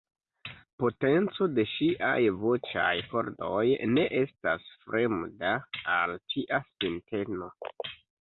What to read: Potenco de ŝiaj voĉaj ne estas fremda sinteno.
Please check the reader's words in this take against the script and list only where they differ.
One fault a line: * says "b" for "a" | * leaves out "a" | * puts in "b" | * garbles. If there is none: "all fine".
* puts in "kordoj"
* puts in "al tia"